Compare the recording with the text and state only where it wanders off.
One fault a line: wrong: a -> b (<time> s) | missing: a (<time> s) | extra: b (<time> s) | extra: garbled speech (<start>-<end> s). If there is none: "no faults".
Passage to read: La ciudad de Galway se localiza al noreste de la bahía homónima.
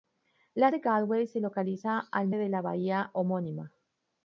missing: ciudad (0.7 s)
missing: noreste (2.3 s)